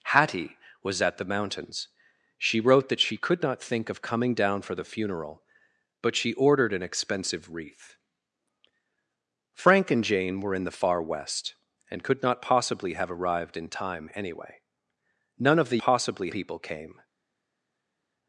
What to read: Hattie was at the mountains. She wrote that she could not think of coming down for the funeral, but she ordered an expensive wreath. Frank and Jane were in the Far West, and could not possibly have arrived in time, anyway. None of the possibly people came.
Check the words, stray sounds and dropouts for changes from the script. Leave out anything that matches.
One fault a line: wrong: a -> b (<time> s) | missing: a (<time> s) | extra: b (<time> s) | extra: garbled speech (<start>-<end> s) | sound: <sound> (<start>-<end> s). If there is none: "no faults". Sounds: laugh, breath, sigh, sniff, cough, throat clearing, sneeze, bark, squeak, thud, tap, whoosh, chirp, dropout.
no faults